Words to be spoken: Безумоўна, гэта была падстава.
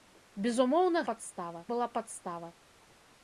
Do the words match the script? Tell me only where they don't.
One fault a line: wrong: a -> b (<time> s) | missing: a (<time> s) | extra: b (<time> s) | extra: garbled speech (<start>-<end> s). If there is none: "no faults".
wrong: гэта -> падстава (1.1 s)